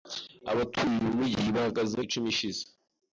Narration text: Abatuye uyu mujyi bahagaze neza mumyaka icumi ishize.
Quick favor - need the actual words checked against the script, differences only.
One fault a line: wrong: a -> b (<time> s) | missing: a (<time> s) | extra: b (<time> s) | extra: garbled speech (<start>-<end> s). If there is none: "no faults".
missing: neza mumyaka (2.0 s)